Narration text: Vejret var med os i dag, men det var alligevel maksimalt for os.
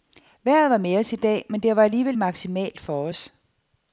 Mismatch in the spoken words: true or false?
false